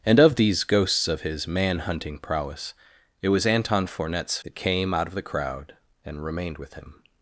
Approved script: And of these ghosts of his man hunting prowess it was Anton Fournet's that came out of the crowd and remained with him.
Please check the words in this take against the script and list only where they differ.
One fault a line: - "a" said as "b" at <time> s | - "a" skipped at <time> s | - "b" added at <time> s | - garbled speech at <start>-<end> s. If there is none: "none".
none